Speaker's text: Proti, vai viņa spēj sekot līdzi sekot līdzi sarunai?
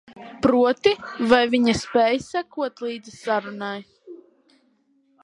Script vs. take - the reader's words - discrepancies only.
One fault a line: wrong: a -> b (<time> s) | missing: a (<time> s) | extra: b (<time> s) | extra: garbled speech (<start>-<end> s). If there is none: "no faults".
missing: sekot līdzi (3.2 s)